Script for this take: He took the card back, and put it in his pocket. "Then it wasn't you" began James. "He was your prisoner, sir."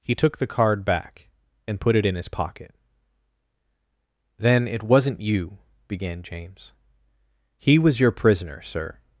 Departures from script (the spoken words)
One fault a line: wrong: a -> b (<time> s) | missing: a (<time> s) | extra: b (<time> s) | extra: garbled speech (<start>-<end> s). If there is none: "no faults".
no faults